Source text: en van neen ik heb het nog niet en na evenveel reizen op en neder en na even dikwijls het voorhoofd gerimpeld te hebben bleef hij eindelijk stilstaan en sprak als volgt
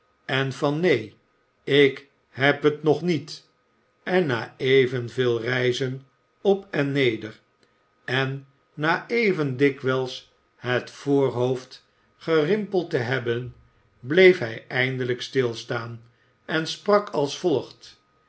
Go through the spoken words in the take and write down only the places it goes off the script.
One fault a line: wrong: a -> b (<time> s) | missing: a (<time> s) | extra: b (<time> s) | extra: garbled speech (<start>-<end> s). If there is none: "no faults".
no faults